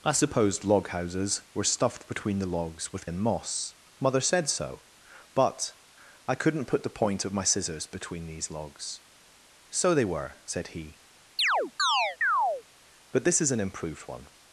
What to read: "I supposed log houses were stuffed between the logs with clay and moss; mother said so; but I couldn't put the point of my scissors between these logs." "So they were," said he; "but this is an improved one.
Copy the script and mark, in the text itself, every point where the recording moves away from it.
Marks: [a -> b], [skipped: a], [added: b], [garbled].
"I supposed log houses were stuffed between the logs with [skipped: clay] and moss; mother said so; but I couldn't put the point of my scissors between these logs." "So they were," said he; "but this is an improved one.